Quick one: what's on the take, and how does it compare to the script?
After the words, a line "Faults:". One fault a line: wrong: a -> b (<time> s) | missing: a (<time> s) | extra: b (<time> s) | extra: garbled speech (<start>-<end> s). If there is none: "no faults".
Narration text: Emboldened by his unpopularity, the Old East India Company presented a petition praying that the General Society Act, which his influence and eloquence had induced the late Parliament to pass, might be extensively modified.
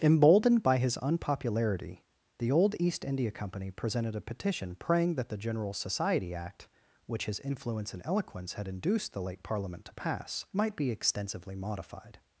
Emboldened by his unpopularity, the Old East India Company presented a petition praying that the General Society Act, which his influence and eloquence had induced the late Parliament to pass, might be extensively modified.
Faults:
no faults